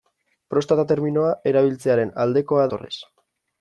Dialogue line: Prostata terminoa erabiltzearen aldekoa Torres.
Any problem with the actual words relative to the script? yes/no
no